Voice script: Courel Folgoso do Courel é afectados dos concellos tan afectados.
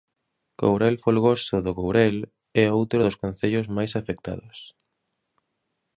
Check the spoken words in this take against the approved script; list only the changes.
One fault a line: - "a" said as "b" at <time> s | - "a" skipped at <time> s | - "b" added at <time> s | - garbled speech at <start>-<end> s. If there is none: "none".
- "afectados" said as "outro" at 2.8 s
- "tan" said as "máis" at 3.8 s